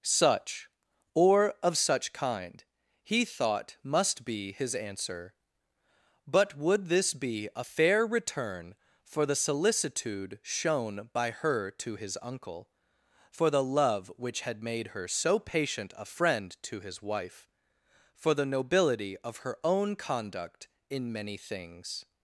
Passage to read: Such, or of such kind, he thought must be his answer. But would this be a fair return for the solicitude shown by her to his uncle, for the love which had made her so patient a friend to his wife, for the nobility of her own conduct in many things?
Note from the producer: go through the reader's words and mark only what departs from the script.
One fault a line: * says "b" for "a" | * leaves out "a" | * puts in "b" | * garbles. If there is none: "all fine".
all fine